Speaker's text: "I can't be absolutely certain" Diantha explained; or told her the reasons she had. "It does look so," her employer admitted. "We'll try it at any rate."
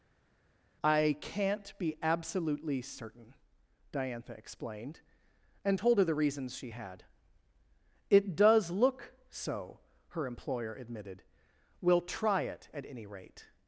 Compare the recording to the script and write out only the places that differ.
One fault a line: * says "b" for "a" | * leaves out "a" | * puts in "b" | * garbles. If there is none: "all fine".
* says "and" for "or"